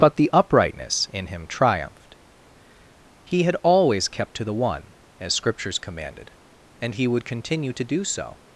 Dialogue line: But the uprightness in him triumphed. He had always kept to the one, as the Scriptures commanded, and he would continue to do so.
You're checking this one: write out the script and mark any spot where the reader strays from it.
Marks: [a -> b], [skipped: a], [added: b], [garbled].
But the uprightness in him triumphed. He had always kept to the one, as [skipped: the] Scriptures commanded, and he would continue to do so.